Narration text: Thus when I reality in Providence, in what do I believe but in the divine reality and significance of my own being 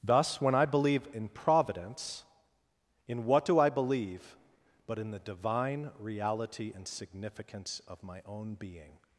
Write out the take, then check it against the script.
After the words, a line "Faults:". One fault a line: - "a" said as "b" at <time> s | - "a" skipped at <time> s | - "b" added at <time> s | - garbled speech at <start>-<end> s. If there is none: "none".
Thus when I believe in Providence, in what do I believe but in the divine reality and significance of my own being
Faults:
- "reality" said as "believe" at 0.7 s